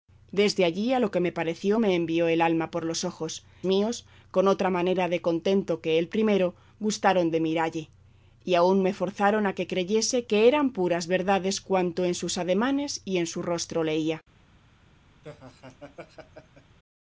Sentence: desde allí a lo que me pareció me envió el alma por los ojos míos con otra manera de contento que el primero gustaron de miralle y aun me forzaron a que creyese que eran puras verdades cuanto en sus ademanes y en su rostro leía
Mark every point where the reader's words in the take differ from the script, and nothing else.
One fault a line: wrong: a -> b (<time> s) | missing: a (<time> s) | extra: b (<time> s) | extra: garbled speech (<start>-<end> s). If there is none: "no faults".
no faults